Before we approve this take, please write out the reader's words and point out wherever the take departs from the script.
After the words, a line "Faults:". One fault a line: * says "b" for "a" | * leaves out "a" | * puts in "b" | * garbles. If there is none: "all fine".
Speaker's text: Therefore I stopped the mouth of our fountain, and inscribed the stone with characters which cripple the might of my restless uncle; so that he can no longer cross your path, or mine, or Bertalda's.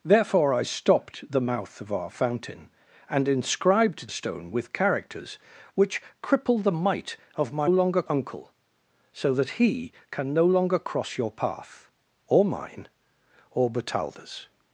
Therefore I stopped the mouth of our fountain, and inscribed stone with characters which cripple the might of my longer uncle; so that he can no longer cross your path, or mine, or Bertalda's.
Faults:
* leaves out "the"
* says "longer" for "restless"